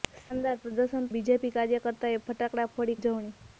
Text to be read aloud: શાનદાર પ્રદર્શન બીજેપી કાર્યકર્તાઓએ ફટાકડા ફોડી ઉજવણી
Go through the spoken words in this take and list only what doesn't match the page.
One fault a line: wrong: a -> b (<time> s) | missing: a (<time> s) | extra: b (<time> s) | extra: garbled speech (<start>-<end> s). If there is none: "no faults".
no faults